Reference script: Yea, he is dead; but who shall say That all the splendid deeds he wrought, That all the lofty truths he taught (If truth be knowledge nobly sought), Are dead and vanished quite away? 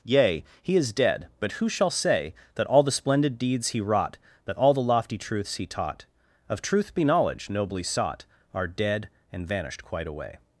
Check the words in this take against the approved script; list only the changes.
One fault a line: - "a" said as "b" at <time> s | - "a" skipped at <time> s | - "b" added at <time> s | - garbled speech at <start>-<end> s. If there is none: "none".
- "If" said as "Of" at 6.5 s